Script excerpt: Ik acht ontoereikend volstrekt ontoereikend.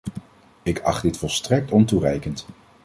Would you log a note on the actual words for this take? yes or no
yes